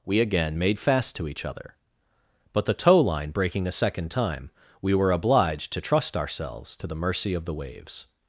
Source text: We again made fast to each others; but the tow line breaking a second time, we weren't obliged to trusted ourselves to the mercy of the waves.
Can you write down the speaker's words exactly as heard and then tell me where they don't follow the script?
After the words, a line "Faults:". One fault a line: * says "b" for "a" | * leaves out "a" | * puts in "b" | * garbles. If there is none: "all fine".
We again made fast to each other; but the tow line breaking a second time, we were obliged to trust ourselves to the mercy of the waves.
Faults:
* says "other" for "others"
* says "were" for "weren't"
* says "trust" for "trusted"